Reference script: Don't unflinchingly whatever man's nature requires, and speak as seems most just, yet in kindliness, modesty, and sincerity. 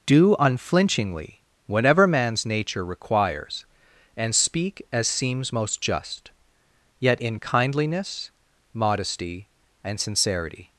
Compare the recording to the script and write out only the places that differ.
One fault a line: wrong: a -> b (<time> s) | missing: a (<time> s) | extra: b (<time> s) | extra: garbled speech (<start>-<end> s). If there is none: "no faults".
wrong: Don't -> Do (0.1 s)